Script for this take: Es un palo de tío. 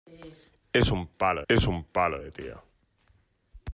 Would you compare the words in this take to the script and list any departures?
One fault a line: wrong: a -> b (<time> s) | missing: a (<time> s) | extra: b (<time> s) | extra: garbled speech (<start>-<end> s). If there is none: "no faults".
extra: es un palo (1.5 s)